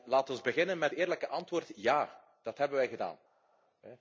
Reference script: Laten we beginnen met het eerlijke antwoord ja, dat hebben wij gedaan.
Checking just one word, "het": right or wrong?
wrong